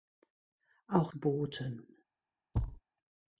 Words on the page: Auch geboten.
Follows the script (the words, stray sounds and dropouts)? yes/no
no